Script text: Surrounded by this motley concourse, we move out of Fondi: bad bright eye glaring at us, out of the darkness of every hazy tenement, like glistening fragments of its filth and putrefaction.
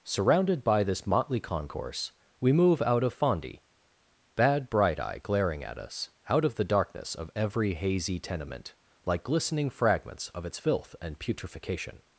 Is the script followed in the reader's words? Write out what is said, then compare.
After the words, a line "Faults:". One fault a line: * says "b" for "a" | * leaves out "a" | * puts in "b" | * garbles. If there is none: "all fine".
Surrounded by this motley concourse, we move out of Fondi: bad bright eye glaring at us, out of the darkness of every hazy tenement, like glistening fragments of its filth and putrefaction.
Faults:
all fine